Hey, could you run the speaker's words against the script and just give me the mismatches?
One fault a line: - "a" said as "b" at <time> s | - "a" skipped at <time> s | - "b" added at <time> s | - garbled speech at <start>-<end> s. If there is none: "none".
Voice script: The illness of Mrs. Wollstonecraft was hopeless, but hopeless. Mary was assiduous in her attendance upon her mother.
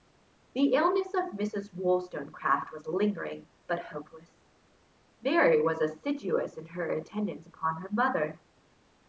- "hopeless" said as "lingering" at 2.9 s